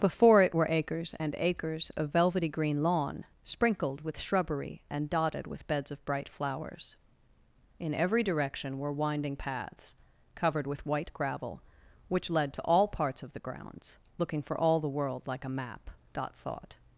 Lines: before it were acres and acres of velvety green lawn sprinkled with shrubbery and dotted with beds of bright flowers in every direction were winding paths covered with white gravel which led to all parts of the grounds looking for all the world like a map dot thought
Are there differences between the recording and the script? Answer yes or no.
no